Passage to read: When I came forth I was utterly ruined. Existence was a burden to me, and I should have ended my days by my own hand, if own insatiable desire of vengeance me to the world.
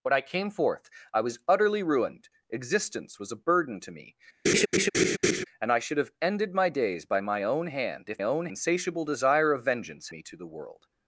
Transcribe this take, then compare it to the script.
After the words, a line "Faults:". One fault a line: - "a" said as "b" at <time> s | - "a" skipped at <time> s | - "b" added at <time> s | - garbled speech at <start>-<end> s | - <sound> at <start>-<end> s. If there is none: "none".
When I came forth I was utterly ruined. Existence was a burden to me, and I should have ended my days by my own hand, if own insatiable desire of vengeance me to the world.
Faults:
- laugh at 4.4-5.4 s